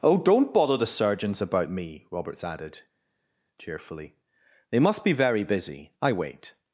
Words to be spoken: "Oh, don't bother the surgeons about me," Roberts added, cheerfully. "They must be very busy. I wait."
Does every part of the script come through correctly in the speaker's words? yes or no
yes